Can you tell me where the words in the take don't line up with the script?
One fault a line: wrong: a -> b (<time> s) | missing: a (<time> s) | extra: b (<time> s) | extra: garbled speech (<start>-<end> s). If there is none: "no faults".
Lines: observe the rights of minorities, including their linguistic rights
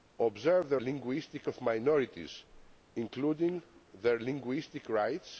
wrong: rights -> linguistic (0.8 s)